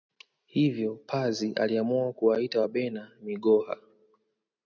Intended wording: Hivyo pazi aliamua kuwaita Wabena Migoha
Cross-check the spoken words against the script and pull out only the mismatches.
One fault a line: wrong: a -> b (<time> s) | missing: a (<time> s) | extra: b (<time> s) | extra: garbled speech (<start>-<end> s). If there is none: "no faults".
no faults